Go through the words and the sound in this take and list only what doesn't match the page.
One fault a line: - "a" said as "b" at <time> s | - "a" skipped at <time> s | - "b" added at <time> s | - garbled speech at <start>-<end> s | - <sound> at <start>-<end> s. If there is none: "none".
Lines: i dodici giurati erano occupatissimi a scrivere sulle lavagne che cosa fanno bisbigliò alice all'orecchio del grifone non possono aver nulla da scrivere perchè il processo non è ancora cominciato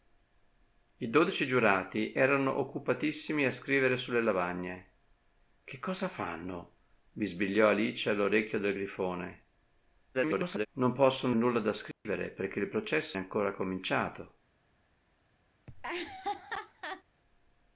- garbled speech at 10.1-10.7 s
- "aver" skipped at 11.4 s
- dropout at 11.9-12.0 s
- "non" skipped at 13.2 s
- laugh at 15.7-17.0 s